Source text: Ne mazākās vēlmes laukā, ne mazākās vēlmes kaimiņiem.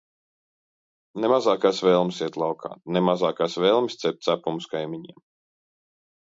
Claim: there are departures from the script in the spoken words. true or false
true